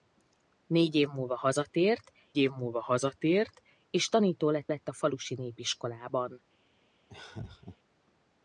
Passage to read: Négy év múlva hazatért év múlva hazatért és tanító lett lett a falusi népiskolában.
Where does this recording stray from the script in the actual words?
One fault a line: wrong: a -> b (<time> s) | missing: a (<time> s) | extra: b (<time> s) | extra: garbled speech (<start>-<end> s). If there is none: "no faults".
no faults